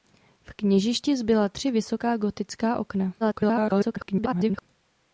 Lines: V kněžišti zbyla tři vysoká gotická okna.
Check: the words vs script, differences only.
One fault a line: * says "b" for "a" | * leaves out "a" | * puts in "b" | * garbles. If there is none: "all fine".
* garbles